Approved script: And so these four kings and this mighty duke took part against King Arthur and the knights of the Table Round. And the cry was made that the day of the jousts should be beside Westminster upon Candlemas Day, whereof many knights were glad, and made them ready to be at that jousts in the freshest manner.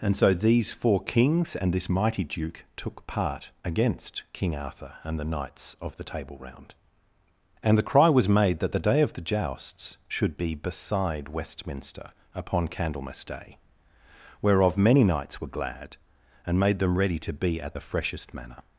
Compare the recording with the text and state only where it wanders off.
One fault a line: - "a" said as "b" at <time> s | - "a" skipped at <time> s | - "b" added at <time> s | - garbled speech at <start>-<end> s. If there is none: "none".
- "that jousts in" skipped at 17.8 s